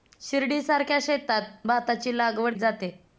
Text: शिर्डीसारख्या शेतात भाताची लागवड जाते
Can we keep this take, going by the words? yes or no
yes